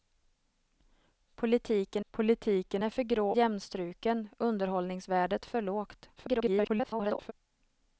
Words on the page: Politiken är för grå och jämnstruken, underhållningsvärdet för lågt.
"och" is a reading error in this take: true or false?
true